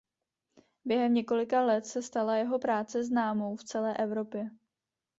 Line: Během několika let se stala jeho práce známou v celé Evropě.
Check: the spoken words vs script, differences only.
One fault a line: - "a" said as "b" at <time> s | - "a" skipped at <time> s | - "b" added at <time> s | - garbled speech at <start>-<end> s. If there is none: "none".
none